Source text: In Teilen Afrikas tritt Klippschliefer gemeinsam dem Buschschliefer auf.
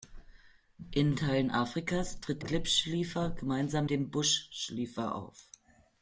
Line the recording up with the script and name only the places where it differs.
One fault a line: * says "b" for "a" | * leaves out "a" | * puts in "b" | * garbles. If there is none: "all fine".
all fine